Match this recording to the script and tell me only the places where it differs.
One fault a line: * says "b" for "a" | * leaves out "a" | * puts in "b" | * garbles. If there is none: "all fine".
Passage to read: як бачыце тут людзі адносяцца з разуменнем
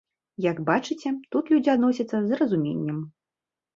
all fine